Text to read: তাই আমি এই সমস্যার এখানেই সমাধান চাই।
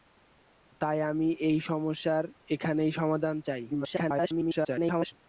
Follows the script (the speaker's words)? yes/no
no